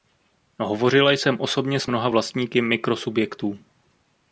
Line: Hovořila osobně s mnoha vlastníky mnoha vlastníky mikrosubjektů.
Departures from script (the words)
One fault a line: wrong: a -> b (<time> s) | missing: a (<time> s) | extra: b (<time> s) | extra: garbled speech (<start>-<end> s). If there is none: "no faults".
extra: jsem (1.1 s)
missing: mnoha vlastníky (2.6 s)